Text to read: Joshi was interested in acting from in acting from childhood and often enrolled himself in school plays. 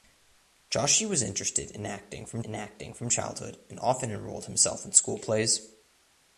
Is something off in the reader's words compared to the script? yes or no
no